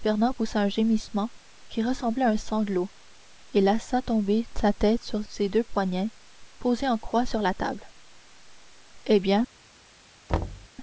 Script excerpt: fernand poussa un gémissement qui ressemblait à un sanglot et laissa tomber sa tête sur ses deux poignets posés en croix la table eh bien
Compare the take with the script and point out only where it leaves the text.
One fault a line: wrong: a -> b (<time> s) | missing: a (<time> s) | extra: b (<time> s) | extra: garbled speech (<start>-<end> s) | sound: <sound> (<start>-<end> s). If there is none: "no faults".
extra: sur (7.2 s)
sound: thud (10.3-10.7 s)